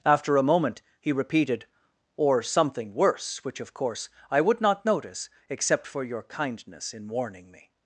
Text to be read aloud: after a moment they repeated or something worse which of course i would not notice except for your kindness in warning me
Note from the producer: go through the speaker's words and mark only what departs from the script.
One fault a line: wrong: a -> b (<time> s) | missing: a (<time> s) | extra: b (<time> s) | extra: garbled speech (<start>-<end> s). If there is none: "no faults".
wrong: they -> he (1.0 s)